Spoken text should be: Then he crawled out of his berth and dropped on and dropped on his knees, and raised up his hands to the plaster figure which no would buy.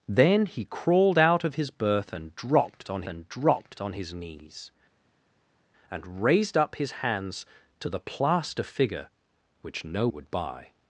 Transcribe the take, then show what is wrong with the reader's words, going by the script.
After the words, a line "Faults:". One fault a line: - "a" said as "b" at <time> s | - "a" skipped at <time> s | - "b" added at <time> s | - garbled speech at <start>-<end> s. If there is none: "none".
Then he crawled out of his berth and dropped on and dropped on his knees, and raised up his hands to the plaster figure which no would buy.
Faults:
none